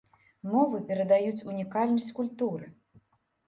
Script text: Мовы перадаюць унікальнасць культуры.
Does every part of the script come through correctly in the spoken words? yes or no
yes